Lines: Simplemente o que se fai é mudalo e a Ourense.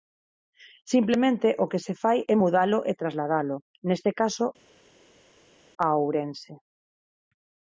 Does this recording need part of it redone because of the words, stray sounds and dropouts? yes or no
yes